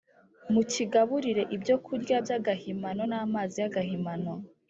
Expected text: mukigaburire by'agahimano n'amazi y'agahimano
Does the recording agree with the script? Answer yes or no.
no